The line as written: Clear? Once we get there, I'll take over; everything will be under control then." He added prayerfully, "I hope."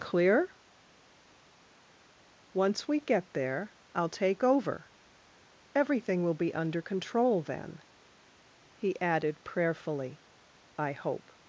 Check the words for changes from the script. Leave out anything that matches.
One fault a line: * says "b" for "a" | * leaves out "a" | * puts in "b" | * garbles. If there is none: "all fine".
all fine